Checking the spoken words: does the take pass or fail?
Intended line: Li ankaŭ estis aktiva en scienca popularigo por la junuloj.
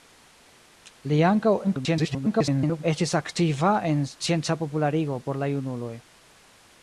fail